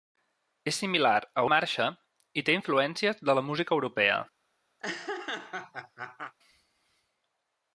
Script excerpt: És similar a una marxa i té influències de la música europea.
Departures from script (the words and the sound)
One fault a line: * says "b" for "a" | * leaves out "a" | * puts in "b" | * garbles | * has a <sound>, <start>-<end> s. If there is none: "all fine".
* leaves out "una"
* has a laugh, 4.8-6.3 s